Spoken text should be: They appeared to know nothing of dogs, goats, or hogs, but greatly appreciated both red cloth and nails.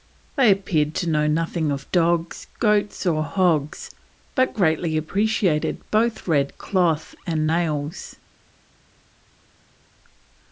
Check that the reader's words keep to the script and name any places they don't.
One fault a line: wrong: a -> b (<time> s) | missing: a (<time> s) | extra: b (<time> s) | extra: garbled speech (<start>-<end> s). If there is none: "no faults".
no faults